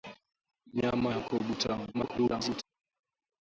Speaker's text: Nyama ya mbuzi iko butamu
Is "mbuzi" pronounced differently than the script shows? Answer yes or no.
yes